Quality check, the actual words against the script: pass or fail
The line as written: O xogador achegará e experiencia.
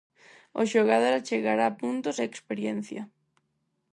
fail